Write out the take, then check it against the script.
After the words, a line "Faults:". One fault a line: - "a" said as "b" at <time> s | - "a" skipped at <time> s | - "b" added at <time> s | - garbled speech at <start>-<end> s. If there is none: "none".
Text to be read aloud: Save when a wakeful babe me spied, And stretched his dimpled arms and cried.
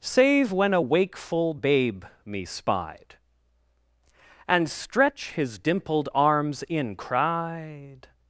Save when a wakeful babe me spied, And stretch his dimpled arms in cried.
Faults:
- "stretched" said as "stretch" at 4.7 s
- "and" said as "in" at 6.6 s